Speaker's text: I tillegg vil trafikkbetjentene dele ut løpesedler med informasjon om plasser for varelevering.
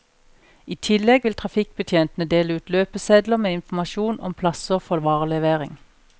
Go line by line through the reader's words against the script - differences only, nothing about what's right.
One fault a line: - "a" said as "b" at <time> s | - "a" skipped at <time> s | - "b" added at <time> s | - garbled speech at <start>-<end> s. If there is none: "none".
none